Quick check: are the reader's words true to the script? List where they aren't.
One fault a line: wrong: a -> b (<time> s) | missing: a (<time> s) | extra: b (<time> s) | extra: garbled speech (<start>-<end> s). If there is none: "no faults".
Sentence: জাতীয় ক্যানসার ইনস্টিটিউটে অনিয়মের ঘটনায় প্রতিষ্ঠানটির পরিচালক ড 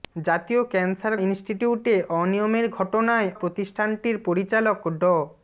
no faults